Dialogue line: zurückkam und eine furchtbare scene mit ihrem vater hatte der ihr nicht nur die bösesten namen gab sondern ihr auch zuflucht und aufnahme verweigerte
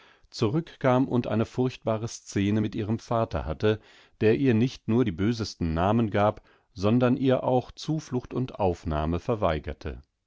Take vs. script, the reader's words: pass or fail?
pass